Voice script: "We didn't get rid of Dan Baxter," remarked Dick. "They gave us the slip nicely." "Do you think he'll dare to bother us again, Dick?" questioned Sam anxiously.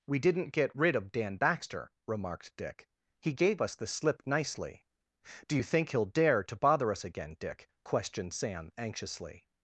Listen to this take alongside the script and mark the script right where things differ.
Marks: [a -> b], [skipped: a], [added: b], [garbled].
"We didn't get rid of Dan Baxter," remarked Dick. ["They -> He] gave us the slip nicely." "Do you think he'll dare to bother us again, Dick?" questioned Sam anxiously.